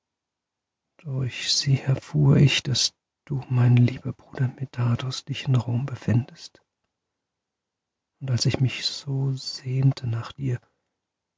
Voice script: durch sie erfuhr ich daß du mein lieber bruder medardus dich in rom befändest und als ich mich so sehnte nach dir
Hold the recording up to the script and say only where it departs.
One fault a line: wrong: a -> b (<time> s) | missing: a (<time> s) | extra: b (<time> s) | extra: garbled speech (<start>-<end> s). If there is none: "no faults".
no faults